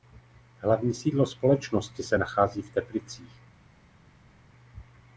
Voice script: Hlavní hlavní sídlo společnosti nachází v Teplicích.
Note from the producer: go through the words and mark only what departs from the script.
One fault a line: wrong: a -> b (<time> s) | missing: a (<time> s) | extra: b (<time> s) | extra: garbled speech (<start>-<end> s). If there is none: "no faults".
missing: hlavní (0.9 s)
extra: se (2.0 s)